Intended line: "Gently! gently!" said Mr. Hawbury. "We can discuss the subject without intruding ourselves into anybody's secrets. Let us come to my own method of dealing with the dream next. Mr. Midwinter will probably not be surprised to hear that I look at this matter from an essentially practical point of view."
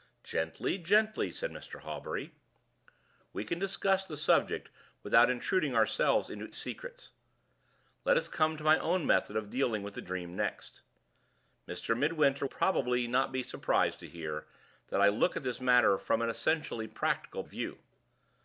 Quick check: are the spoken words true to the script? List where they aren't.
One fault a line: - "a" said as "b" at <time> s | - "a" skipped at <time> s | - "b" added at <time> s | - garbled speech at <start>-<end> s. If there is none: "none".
- "anybody's" skipped at 6.5 s
- "will" skipped at 12.4 s
- "point" skipped at 17.4 s